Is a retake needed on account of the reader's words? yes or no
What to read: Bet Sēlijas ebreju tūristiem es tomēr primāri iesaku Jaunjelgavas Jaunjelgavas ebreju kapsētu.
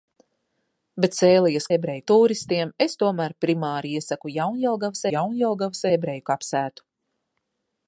no